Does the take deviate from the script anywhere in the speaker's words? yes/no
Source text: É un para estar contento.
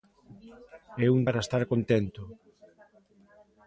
no